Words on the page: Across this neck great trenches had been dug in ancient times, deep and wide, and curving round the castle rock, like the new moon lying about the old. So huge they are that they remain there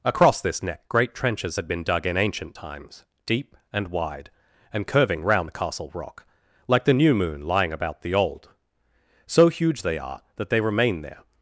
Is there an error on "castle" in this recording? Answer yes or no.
no